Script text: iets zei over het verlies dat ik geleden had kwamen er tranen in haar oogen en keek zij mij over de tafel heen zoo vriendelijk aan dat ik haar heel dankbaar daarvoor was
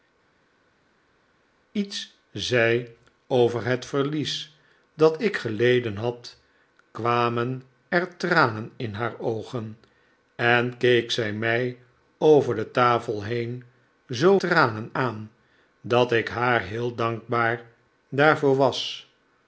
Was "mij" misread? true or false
false